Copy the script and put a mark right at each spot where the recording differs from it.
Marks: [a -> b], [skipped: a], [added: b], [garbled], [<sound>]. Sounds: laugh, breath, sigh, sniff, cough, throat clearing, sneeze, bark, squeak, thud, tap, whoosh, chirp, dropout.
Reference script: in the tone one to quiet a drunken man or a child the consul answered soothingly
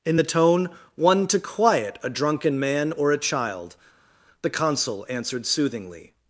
in the tone one to quiet a drunken man or a child the consul answered soothingly